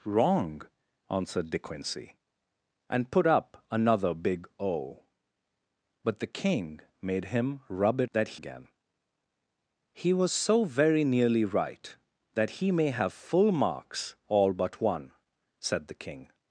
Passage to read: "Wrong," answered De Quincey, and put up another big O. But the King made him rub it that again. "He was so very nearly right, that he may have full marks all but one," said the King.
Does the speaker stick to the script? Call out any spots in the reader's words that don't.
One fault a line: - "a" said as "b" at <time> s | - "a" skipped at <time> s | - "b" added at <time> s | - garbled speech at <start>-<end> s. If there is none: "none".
none